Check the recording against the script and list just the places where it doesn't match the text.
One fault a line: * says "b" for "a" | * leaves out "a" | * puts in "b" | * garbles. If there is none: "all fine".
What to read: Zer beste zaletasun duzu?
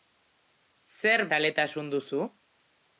* leaves out "beste"